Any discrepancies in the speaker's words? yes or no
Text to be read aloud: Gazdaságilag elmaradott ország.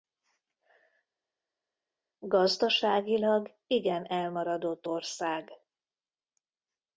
yes